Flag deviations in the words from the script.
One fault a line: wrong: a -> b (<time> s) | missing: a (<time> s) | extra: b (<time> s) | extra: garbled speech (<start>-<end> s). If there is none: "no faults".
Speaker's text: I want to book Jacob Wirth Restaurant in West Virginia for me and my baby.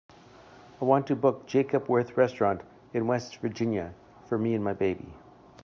no faults